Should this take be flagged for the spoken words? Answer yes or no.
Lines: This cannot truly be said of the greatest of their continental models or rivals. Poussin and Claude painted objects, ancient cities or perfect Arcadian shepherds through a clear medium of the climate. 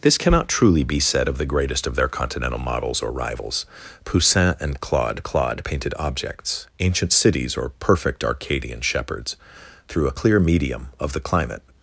yes